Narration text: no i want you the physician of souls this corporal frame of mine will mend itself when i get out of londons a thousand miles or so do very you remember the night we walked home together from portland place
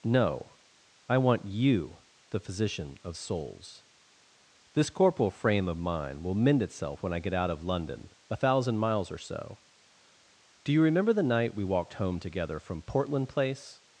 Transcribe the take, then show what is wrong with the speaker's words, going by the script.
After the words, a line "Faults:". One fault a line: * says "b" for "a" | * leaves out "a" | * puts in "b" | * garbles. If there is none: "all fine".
no i want you the physician of souls this corporal frame of mine will mend itself when i get out of london a thousand miles or so do you remember the night we walked home together from portland place
Faults:
* says "london" for "londons"
* leaves out "very"